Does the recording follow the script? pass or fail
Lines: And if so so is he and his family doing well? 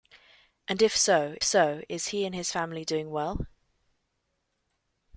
pass